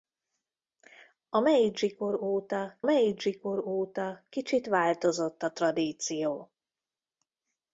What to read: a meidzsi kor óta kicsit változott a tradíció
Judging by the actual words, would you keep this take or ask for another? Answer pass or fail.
fail